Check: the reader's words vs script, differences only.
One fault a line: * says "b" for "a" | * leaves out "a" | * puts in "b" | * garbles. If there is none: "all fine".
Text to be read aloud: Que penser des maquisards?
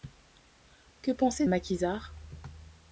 * leaves out "des"